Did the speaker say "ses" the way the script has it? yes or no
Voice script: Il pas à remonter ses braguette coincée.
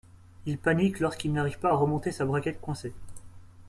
no